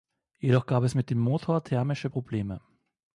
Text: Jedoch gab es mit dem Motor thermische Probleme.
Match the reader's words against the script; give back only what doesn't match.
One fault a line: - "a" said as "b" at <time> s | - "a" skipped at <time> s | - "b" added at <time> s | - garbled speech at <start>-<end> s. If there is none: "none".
none